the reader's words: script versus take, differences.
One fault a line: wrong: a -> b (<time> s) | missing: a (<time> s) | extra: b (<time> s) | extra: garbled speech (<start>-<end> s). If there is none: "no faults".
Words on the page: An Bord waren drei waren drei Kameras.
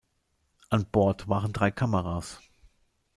missing: waren drei (1.7 s)